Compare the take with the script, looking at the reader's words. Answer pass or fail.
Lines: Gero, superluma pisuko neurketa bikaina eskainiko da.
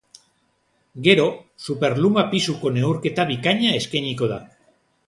pass